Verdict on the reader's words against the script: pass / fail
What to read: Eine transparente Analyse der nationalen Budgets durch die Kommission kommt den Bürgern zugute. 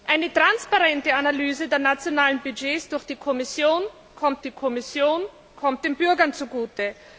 fail